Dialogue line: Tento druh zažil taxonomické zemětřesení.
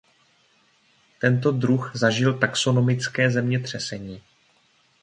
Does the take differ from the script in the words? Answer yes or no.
no